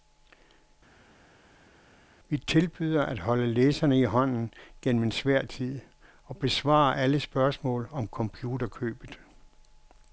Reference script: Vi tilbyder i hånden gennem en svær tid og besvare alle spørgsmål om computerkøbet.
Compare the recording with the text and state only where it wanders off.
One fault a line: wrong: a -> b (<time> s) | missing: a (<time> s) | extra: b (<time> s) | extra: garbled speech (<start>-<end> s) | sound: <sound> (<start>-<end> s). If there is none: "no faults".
extra: at holde læserne (3.0 s)